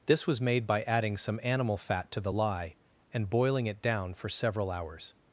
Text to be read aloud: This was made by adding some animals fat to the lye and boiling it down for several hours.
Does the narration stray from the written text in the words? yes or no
yes